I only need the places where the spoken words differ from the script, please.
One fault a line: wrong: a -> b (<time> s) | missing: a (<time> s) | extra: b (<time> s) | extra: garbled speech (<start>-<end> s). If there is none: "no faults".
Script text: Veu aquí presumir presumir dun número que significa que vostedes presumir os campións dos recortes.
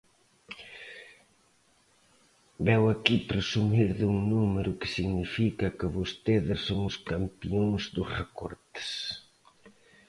missing: presumir (3.9 s)
wrong: presumir -> son (6.7 s)